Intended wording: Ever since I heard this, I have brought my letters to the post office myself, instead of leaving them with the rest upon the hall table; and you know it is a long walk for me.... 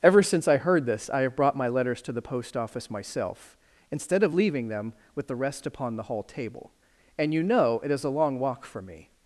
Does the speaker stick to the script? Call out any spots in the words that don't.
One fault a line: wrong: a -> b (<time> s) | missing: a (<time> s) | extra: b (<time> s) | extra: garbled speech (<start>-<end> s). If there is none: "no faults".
no faults